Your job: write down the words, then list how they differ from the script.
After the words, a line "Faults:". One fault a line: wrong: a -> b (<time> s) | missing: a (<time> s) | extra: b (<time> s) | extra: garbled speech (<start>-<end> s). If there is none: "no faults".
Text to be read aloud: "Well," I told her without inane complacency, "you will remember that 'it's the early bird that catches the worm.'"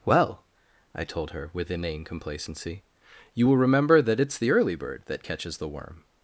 "Well," I told her with inane complacency, "you will remember that 'it's the early bird that catches the worm.'"
Faults:
wrong: without -> with (1.5 s)